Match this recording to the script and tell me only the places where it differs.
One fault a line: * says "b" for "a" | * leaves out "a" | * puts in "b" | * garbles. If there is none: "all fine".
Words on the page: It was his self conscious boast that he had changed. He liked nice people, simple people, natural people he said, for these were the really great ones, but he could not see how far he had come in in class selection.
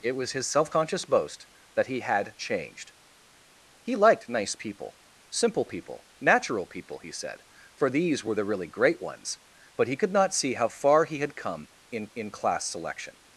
all fine